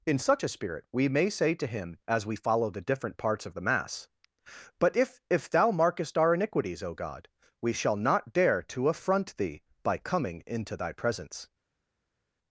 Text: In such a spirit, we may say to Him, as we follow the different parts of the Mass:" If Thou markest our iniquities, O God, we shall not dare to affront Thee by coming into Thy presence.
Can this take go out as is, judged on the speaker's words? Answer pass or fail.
fail